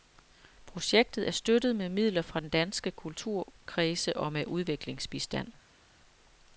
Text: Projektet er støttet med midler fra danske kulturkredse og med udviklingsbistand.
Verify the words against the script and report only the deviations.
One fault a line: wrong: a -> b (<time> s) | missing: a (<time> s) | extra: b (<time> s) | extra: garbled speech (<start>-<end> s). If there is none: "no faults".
no faults